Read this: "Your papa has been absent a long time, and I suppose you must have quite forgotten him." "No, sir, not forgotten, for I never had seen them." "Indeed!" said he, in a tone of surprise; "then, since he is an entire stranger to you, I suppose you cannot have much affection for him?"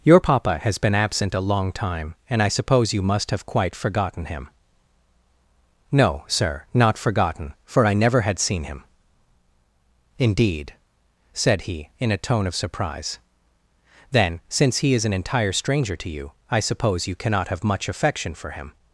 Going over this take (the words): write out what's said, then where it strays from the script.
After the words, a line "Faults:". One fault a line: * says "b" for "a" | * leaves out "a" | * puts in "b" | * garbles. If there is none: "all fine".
"Your papa has been absent a long time, and I suppose you must have quite forgotten him." "No, sir, not forgotten, for I never had seen him." "Indeed!" said he, in a tone of surprise; "then, since he is an entire stranger to you, I suppose you cannot have much affection for him?"
Faults:
* says "him" for "them"